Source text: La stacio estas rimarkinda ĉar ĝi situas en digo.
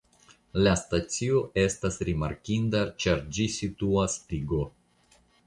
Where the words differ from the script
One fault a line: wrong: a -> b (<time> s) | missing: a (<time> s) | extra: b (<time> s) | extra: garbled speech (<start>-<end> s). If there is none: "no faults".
missing: en (4.2 s)